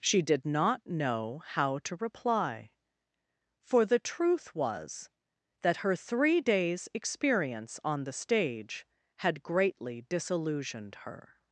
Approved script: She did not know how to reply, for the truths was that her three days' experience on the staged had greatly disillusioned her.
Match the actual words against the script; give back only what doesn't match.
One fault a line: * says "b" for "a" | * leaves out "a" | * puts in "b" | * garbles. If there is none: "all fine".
* says "truth" for "truths"
* says "stage" for "staged"